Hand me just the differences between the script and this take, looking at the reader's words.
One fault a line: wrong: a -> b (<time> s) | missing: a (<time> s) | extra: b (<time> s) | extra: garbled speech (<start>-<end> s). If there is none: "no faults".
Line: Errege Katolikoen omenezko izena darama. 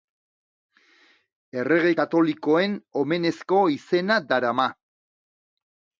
no faults